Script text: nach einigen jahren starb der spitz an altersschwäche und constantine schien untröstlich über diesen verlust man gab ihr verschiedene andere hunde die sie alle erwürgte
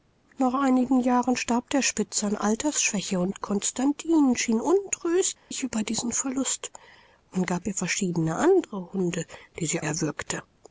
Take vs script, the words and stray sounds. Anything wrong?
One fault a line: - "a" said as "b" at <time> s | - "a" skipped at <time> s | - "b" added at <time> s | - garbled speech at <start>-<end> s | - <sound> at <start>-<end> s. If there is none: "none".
- dropout at 5.4-5.5 s
- "alle" skipped at 9.8 s